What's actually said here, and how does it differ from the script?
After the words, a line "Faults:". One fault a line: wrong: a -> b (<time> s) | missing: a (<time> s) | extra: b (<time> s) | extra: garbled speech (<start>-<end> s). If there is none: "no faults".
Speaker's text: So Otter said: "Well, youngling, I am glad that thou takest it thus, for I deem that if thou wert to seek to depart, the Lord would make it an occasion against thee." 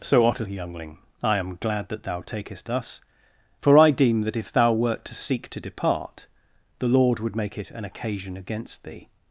So Otter youngling, I am glad that thou takest thus, for I deem that if thou wert to seek to depart, the Lord would make it an occasion against thee."
Faults:
missing: said Well (0.5 s)
missing: it (2.7 s)